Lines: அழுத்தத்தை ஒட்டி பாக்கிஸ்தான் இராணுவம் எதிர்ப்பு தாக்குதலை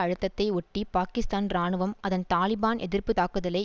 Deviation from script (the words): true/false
true